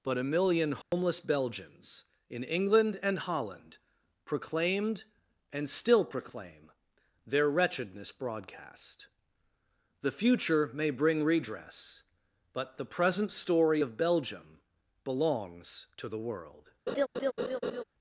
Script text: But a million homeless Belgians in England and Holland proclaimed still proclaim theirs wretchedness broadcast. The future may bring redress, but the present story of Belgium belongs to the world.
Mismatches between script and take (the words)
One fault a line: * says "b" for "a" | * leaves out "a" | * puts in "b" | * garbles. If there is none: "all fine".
* puts in "and"
* says "their" for "theirs"